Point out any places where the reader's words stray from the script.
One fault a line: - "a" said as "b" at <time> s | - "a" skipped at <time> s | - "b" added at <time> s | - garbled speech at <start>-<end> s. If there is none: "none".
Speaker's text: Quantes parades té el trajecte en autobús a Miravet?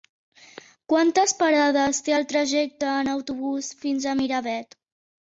- "fins" added at 3.8 s